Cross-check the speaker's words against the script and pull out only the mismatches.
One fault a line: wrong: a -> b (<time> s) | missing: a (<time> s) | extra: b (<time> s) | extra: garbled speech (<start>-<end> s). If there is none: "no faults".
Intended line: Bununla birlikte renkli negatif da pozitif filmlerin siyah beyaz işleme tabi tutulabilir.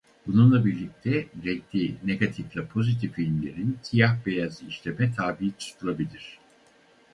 no faults